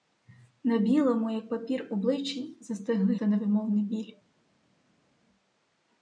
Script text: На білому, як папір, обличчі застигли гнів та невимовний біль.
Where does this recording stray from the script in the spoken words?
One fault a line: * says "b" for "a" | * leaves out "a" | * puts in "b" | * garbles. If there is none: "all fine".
* leaves out "гнів"